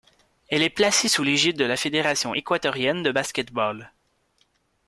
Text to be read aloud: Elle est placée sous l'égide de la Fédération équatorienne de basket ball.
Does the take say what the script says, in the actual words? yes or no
yes